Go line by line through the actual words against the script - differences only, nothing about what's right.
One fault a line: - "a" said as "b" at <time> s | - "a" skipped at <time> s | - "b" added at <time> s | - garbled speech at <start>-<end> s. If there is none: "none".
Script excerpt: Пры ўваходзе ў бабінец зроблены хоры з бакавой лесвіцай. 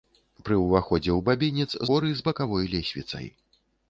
- "зроблены" skipped at 1.7 s